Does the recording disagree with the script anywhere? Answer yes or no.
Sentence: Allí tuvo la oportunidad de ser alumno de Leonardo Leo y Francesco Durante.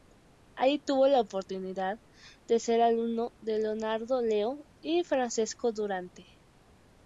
no